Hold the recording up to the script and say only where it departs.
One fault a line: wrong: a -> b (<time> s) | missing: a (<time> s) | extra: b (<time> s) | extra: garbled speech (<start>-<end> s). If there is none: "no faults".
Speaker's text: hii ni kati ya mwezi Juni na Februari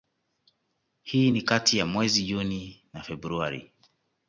no faults